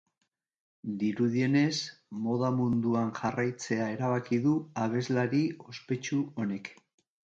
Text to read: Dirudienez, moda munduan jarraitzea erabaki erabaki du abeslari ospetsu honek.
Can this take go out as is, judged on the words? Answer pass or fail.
fail